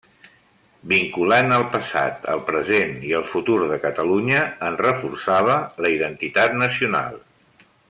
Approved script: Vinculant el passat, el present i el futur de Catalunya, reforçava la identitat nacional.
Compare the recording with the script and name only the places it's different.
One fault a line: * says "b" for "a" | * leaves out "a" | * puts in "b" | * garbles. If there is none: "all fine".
* puts in "en"